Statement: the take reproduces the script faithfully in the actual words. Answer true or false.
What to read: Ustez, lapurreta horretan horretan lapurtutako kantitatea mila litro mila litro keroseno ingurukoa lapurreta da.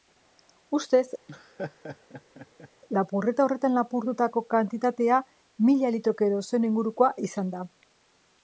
false